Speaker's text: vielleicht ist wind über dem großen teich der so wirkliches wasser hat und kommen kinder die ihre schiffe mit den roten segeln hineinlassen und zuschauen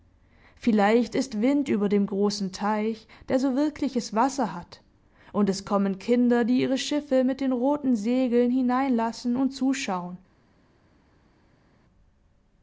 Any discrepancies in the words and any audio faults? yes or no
yes